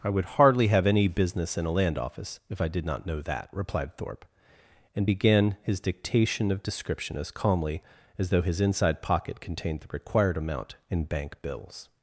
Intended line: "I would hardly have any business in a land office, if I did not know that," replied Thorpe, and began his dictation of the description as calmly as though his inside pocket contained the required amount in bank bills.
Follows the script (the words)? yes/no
no